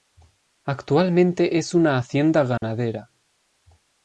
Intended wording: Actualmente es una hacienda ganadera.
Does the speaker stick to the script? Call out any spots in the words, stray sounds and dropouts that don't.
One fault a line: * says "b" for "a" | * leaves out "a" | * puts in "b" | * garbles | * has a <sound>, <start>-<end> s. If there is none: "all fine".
* has a dropout, 2.6-2.6 s